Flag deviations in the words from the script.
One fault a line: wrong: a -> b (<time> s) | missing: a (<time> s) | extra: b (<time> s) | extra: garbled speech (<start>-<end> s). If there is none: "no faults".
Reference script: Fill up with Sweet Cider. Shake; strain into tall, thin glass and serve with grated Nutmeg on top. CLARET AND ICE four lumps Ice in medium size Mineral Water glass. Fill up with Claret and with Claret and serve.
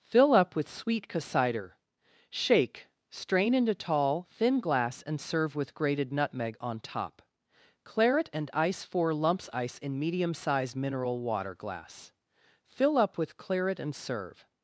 missing: with Claret and (13.9 s)